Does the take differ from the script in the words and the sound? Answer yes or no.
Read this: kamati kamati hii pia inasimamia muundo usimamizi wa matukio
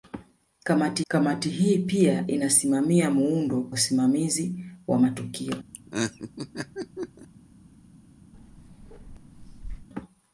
yes